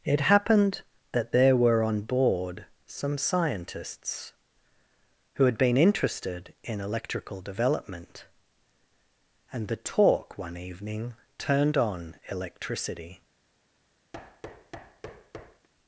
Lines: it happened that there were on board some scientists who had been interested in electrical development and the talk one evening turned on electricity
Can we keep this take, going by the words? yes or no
yes